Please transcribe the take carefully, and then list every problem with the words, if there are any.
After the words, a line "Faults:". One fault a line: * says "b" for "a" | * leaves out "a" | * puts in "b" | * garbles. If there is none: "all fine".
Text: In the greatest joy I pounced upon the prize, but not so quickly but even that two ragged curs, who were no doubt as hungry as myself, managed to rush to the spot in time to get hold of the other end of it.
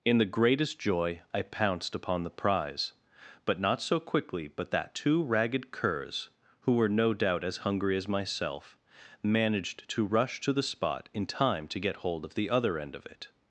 In the greatest joy I pounced upon the prize, but not so quickly but that two ragged curs, who were no doubt as hungry as myself, managed to rush to the spot in time to get hold of the other end of it.
Faults:
* leaves out "even"